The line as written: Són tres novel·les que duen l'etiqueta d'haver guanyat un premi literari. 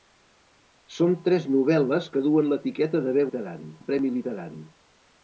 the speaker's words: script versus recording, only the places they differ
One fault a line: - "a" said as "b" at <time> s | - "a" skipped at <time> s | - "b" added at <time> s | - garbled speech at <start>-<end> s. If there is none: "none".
- "guanyat" said as "literari" at 3.3 s